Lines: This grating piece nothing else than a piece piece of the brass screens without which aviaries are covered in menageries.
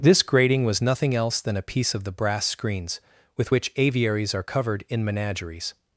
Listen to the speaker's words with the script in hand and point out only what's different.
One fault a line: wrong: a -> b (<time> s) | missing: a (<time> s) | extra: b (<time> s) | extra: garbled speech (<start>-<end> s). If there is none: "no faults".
wrong: piece -> was (0.7 s)
missing: piece (1.9 s)
wrong: without -> with (3.4 s)